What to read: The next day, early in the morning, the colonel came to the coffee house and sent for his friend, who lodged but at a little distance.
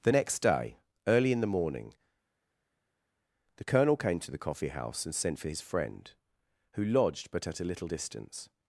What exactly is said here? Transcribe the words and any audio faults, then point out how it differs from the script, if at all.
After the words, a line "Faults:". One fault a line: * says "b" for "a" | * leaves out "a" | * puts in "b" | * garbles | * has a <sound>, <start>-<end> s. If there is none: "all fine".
The next day, early in the morning, the colonel came to the coffee house and sent for his friend, who lodged but at a little distance.
Faults:
all fine